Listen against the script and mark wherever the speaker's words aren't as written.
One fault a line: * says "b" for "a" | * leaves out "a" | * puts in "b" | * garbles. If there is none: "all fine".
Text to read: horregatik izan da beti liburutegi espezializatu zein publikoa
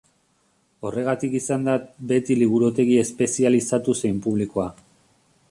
all fine